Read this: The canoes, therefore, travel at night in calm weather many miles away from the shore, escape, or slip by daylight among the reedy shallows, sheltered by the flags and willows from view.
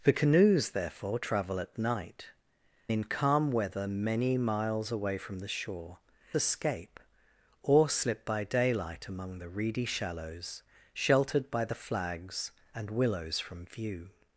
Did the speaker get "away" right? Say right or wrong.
right